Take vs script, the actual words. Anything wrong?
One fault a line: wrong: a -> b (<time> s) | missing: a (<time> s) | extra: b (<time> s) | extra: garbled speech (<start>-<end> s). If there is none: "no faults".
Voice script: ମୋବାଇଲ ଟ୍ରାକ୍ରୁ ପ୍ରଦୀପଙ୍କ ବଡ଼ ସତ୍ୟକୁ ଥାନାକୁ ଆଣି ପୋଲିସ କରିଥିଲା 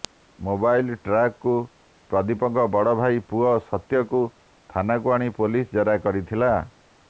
extra: ଭାଇ ପୁଅ (3.0 s)
extra: ଜେରା (5.8 s)